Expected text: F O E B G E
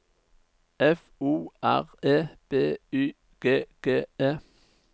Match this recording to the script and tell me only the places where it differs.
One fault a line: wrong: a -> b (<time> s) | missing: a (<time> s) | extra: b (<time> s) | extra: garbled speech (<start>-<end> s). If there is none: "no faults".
extra: R (1.6 s)
extra: Y G (2.9 s)